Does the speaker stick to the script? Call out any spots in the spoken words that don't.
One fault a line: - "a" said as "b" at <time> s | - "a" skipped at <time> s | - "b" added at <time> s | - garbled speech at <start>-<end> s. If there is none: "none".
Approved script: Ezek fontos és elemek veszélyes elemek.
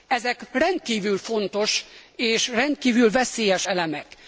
- "rendkívül" added at 0.5 s
- "elemek" said as "rendkívül" at 2.5 s